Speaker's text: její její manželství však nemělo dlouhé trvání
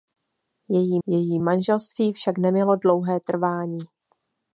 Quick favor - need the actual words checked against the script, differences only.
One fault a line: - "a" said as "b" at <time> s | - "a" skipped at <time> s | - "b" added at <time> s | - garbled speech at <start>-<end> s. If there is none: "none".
none